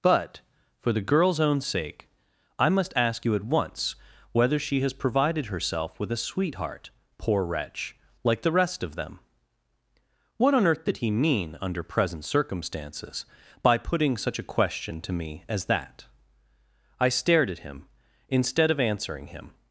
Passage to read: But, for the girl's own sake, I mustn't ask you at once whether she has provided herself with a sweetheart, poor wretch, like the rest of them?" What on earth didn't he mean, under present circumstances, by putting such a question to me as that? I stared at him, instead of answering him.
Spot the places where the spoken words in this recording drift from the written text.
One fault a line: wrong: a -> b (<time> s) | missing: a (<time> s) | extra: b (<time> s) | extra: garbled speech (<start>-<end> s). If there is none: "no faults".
wrong: mustn't -> must (2.7 s)
wrong: didn't -> did (10.8 s)